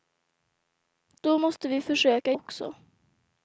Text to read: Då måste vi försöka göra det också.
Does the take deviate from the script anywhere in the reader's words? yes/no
yes